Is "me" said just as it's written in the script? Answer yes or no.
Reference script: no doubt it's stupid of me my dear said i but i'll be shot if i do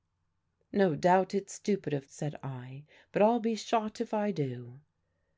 no